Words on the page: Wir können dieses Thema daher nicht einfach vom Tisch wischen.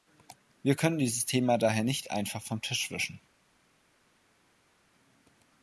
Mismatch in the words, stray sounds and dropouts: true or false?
false